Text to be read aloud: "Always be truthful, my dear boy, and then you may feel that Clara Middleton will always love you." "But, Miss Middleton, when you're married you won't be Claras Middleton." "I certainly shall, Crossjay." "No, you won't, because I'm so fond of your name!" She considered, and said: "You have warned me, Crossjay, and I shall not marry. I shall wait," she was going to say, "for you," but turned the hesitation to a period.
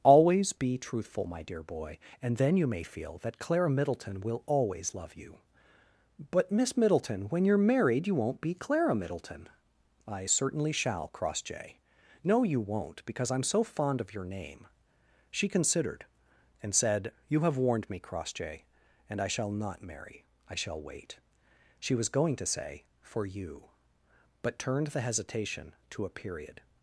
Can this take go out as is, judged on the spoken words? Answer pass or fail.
fail